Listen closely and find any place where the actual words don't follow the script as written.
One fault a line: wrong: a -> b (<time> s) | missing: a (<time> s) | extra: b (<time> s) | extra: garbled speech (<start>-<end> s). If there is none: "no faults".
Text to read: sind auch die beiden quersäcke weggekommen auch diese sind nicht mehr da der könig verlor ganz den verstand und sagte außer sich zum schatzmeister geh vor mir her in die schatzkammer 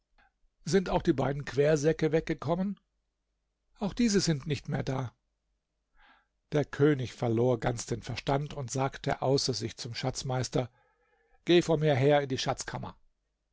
no faults